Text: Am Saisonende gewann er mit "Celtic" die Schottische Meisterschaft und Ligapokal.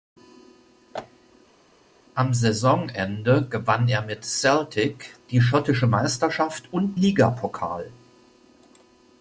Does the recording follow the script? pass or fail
pass